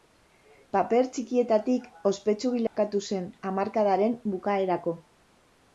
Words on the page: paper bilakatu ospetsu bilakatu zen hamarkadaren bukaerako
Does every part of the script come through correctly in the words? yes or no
no